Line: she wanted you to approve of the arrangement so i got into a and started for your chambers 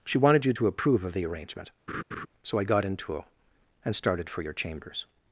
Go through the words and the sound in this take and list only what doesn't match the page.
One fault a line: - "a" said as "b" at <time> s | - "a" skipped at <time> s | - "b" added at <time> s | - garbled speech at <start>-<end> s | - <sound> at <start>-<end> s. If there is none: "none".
- laugh at 1.9-2.3 s